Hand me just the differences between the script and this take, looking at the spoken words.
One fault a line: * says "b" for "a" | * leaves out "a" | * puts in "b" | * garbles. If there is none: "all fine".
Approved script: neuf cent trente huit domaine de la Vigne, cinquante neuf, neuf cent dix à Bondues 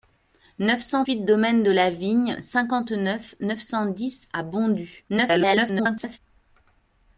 * leaves out "trente"
* garbles